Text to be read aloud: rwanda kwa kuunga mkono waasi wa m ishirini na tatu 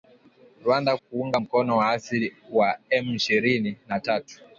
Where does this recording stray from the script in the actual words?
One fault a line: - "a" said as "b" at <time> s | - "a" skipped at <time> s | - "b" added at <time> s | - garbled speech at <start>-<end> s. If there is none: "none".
- "kwa" skipped at 1.0 s